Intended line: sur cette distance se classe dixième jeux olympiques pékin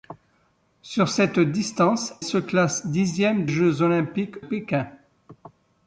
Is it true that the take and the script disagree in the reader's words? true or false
false